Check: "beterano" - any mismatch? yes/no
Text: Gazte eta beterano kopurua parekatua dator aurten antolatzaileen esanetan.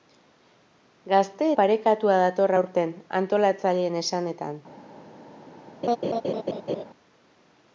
yes